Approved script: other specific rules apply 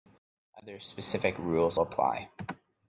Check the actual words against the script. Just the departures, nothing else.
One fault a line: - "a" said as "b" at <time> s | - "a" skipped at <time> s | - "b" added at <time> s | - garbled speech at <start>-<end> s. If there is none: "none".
none